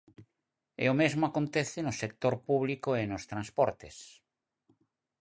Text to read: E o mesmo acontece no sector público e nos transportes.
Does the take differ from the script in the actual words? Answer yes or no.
no